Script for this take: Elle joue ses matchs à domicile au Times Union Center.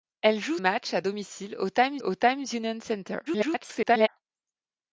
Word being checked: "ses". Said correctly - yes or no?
no